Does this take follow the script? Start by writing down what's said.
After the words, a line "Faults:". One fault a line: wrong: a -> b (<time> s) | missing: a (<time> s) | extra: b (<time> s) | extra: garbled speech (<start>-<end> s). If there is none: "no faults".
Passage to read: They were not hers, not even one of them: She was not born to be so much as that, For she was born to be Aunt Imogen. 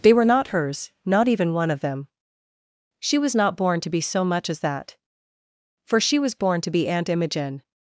They were not hers, not even one of them: She was not born to be so much as that, For she was born to be Aunt Imogen.
Faults:
no faults